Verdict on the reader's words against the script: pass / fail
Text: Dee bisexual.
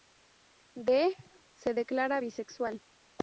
fail